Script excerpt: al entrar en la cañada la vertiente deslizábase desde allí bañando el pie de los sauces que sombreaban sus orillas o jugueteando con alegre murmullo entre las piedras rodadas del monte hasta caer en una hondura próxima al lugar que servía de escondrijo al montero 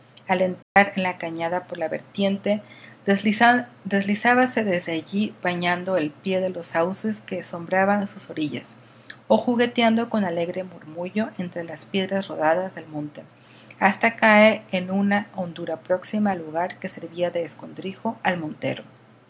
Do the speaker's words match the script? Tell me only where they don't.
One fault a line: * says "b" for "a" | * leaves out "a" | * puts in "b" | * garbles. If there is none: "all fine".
* puts in "por"